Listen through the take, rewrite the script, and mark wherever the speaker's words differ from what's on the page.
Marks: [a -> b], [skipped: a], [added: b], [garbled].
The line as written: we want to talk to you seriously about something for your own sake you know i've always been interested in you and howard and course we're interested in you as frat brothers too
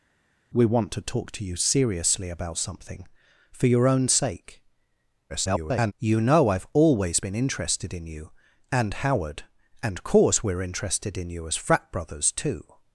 we want to talk to you seriously about something for your own sake [garbled] you know i've always been interested in you and howard and course we're interested in you as frat brothers too